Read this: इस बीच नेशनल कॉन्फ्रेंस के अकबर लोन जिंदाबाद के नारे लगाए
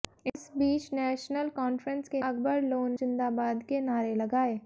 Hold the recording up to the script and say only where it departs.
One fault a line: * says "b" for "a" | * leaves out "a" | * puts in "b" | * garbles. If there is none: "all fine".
all fine